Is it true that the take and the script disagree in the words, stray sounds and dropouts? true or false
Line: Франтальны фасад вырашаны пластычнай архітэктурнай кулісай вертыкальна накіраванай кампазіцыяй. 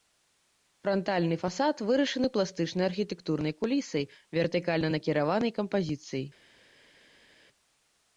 false